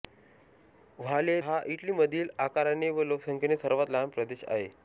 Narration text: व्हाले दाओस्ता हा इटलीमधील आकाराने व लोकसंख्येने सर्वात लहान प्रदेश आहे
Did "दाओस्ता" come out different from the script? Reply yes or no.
yes